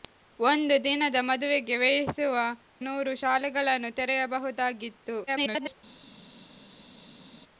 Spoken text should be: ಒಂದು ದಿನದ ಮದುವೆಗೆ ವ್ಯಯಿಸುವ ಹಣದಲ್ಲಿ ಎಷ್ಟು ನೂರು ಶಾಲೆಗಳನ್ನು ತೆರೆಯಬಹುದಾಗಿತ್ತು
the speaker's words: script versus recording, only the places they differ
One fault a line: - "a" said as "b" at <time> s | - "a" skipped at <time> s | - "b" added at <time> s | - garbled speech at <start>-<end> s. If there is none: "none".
- "ಹಣದಲ್ಲಿ ಎಷ್ಟು" skipped at 2.4 s
- garbled speech at 5.3-5.8 s